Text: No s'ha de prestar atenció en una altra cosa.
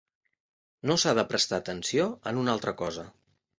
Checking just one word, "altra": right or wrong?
right